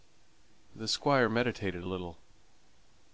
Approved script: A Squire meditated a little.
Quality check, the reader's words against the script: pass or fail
fail